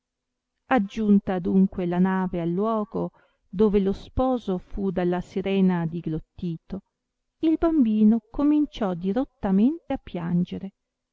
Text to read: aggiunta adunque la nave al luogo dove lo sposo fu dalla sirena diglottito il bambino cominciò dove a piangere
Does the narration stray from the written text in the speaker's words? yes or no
yes